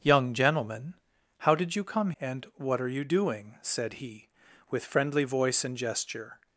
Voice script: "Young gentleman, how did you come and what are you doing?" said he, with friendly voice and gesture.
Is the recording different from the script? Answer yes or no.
no